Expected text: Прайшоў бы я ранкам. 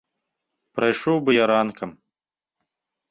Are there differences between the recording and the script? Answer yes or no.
no